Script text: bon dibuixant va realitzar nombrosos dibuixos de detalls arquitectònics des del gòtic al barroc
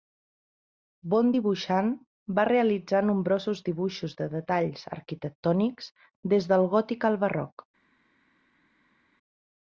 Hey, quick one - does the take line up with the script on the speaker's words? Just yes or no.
yes